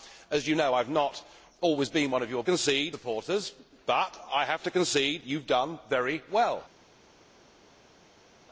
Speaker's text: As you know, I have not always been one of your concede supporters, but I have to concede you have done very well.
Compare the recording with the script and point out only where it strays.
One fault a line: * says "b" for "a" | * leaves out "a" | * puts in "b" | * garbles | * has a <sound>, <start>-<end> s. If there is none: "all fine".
all fine